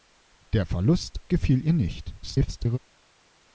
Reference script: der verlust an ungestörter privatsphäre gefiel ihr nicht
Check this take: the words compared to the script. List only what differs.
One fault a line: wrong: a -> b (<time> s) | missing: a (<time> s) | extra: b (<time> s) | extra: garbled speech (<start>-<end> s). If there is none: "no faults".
missing: an ungestörter privatsphäre (1.2 s)
extra: garbled speech (2.2-2.8 s)